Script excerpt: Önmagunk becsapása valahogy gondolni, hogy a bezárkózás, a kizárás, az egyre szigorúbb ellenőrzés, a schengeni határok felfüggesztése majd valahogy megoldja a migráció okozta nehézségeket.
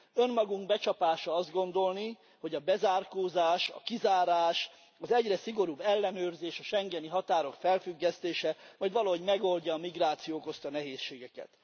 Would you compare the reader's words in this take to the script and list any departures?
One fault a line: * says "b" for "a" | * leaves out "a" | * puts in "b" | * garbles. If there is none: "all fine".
* says "azt" for "valahogy"